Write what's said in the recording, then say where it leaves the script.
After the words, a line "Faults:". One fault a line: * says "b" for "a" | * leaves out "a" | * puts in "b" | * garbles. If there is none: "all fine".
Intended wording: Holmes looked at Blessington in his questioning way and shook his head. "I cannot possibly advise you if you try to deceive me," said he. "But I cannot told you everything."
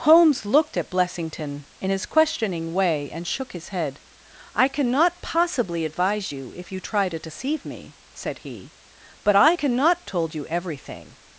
Holmes looked at Blessington in his questioning way and shook his head. "I cannot possibly advise you if you try to deceive me," said he. "But I cannot told you everything."
Faults:
all fine